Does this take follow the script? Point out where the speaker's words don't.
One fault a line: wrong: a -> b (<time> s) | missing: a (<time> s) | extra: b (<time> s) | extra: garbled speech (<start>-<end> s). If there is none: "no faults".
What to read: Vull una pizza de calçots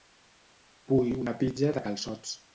no faults